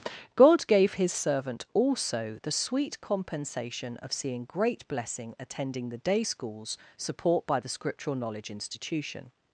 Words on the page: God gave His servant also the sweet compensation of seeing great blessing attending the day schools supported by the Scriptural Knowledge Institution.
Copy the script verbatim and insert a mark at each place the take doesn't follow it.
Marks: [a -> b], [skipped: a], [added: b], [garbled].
God gave His servant also the sweet compensation of seeing great blessing attending the day schools [supported -> support] by the Scriptural Knowledge Institution.